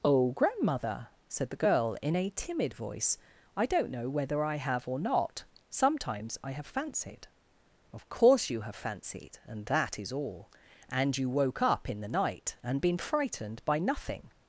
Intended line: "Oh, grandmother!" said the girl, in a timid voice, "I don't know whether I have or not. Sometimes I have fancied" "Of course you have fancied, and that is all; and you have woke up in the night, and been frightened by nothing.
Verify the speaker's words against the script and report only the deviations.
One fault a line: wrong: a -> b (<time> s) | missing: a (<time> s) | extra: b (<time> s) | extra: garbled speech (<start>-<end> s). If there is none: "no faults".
missing: have (11.3 s)